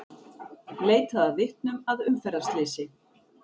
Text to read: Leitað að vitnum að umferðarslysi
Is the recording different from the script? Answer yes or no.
no